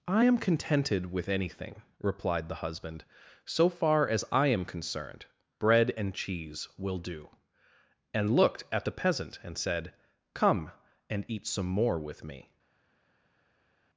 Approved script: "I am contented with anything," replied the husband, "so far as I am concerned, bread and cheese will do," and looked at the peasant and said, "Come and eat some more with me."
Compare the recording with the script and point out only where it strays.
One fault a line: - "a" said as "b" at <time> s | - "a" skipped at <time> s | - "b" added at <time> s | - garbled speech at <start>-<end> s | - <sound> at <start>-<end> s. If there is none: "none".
none